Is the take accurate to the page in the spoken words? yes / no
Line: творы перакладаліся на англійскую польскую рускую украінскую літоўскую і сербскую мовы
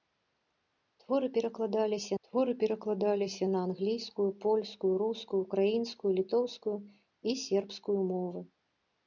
no